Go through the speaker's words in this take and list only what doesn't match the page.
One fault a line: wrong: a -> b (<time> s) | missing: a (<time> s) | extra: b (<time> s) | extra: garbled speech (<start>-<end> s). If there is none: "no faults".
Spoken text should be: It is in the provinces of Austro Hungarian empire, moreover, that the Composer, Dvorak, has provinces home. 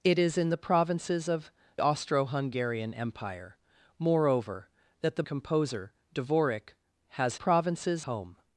no faults